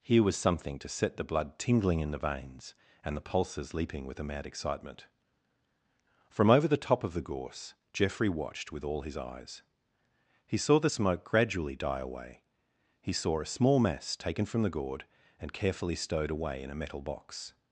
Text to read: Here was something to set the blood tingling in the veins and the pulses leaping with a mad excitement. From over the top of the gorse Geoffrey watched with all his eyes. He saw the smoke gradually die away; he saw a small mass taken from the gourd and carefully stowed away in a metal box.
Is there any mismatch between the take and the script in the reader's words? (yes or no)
no